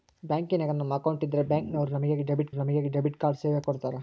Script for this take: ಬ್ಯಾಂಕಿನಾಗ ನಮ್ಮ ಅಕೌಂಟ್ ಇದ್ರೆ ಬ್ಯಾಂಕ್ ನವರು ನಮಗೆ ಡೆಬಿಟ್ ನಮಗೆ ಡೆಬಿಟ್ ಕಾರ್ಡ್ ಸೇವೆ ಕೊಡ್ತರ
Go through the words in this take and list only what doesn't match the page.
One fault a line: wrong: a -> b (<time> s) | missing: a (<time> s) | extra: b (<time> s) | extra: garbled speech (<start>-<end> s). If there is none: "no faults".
no faults